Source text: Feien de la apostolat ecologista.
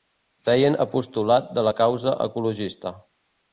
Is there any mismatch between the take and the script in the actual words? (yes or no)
yes